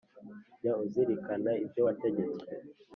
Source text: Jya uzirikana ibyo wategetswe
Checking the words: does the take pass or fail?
pass